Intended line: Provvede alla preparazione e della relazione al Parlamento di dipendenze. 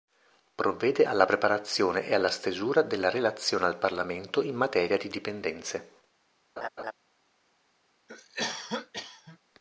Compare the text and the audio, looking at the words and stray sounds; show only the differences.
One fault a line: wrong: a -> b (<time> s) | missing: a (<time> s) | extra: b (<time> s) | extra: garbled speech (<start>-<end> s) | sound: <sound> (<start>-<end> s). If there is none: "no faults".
extra: alla stesura (2.1 s)
extra: in materia (4.4 s)
sound: laugh (6.6-6.9 s)
sound: cough (8.1-9.4 s)